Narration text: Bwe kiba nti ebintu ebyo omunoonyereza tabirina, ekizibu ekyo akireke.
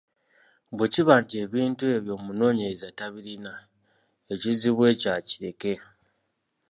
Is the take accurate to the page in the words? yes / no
yes